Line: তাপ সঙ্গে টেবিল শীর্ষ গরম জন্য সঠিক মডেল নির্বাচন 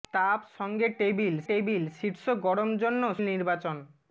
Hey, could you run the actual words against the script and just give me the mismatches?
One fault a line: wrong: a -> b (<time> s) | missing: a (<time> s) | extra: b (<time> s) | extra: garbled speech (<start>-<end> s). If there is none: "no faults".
extra: টেবিল (1.5 s)
missing: সঠিক মডেল (3.0 s)